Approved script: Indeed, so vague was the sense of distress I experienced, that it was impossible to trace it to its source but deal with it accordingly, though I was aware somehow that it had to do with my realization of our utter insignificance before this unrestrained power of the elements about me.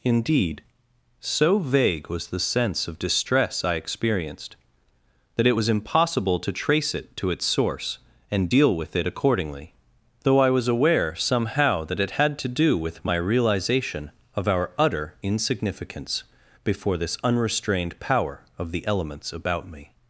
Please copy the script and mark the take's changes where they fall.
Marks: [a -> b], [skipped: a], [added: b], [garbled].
Indeed, so vague was the sense of distress I experienced, that it was impossible to trace it to its source [but -> and] deal with it accordingly, though I was aware somehow that it had to do with my realization of our utter insignificance before this unrestrained power of the elements about me.